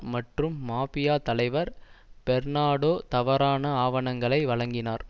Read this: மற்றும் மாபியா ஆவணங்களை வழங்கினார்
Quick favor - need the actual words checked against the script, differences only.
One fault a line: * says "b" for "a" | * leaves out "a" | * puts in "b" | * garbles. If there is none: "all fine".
* puts in "தலைவர் பெர்னாடோ தவறான"